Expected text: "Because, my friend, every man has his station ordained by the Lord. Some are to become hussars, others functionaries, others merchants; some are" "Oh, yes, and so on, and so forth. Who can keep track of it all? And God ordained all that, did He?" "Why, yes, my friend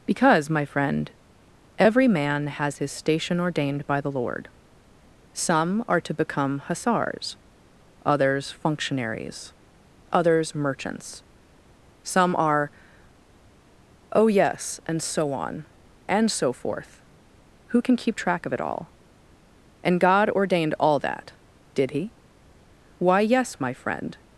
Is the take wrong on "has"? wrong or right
right